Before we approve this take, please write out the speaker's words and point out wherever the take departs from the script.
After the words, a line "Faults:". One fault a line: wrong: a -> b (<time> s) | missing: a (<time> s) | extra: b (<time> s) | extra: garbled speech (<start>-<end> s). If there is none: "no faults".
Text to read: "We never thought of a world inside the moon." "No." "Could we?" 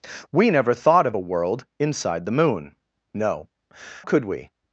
"We never thought of a world inside the moon." "No." "Could we?"
Faults:
no faults